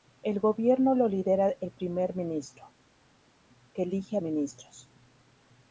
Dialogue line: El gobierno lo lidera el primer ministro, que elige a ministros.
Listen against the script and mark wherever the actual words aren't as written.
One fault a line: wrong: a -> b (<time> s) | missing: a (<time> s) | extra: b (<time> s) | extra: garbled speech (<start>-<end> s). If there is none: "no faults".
no faults